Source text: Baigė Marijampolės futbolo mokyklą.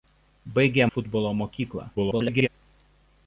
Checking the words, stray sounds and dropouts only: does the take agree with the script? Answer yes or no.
no